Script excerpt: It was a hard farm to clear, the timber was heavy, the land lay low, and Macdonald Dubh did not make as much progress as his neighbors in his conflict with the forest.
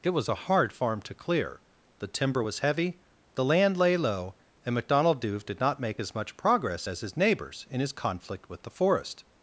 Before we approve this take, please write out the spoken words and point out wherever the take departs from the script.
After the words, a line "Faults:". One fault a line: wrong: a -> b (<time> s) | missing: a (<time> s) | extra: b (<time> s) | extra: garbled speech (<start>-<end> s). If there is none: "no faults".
It was a hard farm to clear, the timber was heavy, the land lay low, and Macdonald Dubh did not make as much progress as his neighbors in his conflict with the forest.
Faults:
no faults